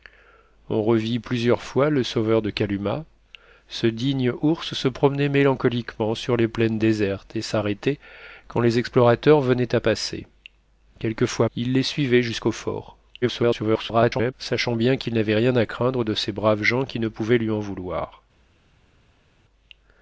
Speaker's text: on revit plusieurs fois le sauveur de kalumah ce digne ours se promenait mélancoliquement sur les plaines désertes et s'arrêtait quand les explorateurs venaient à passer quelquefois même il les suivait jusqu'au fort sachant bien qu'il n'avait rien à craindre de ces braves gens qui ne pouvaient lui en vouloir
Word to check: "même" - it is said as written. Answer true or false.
false